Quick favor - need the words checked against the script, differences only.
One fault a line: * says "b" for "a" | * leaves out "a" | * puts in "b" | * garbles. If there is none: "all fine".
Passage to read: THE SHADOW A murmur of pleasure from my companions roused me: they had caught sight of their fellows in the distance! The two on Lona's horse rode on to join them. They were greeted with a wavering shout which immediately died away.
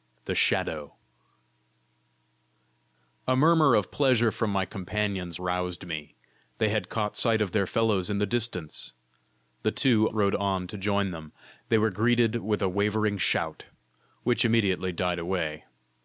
* leaves out "on Lona's horse"